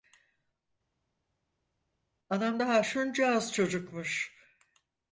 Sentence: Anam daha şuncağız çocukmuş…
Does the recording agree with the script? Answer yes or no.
yes